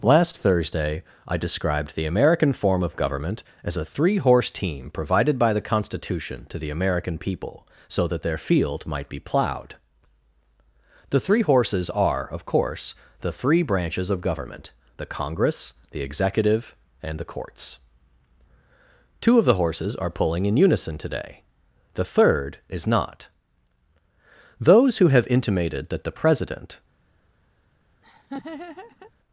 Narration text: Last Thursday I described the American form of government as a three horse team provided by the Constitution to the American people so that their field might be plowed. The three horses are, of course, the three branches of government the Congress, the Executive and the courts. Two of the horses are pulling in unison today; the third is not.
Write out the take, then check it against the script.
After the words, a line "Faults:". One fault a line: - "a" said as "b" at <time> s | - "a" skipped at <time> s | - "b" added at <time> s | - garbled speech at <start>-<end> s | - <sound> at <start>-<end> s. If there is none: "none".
Last Thursday I described the American form of government as a three horse team provided by the Constitution to the American people so that their field might be plowed. The three horses are, of course, the three branches of government the Congress, the Executive and the courts. Two of the horses are pulling in unison today; the third is not. Those who have intimated that the President
Faults:
- "Those who have intimated that the President" added at 24.6 s
- laugh at 28.0-29.1 s